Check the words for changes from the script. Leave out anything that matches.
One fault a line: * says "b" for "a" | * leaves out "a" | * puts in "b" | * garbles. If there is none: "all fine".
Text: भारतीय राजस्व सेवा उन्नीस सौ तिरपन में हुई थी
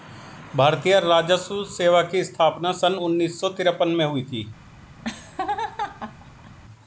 * puts in "की स्थापना सन"